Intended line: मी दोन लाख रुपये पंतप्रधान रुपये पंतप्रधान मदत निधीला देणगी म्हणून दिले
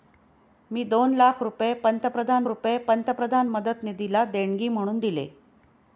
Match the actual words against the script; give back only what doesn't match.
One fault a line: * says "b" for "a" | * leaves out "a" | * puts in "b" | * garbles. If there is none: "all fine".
all fine